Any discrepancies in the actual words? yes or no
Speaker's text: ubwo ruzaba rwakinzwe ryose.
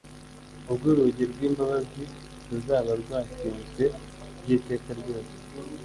yes